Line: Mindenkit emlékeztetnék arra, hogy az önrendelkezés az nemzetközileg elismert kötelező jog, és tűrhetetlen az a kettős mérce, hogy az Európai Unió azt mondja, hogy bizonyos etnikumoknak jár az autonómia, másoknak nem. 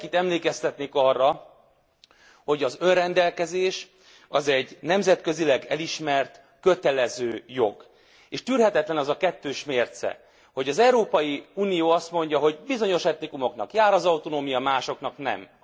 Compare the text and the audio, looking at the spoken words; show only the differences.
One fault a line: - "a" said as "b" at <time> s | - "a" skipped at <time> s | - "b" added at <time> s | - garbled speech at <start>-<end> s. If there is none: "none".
- "egy" added at 4.5 s